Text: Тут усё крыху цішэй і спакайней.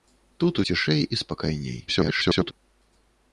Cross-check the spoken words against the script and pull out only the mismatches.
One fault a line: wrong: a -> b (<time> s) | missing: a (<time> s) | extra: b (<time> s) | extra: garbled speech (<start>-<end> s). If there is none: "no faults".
missing: усё крыху (0.6 s)
extra: garbled speech (1.9-2.5 s)